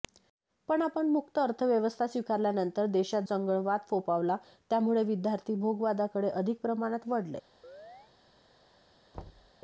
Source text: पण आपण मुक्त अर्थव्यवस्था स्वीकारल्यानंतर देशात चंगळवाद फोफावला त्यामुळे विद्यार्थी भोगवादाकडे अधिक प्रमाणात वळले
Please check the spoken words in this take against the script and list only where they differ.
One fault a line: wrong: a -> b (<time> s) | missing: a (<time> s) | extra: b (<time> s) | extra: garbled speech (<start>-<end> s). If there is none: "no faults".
no faults